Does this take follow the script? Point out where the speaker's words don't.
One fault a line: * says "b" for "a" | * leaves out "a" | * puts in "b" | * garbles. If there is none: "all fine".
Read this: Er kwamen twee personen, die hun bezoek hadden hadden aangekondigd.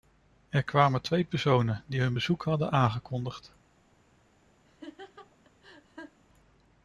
* leaves out "hadden"